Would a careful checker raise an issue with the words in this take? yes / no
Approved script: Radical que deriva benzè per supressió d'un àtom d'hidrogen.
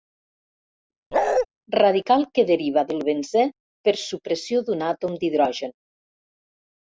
yes